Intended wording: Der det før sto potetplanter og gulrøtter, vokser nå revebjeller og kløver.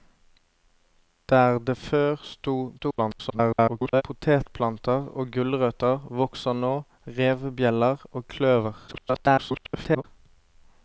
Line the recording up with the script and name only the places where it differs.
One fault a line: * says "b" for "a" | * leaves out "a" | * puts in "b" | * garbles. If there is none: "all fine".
* garbles
* garbles